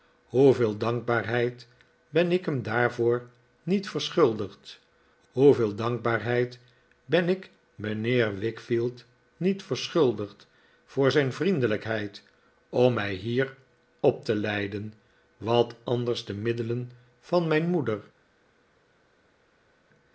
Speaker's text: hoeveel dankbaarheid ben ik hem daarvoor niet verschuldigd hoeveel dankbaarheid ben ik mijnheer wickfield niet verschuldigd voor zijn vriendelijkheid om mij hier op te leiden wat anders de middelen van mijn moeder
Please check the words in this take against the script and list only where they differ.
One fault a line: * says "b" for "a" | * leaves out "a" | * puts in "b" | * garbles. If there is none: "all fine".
all fine